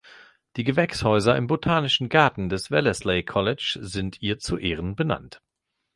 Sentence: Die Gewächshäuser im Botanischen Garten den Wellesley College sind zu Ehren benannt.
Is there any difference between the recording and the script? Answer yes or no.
yes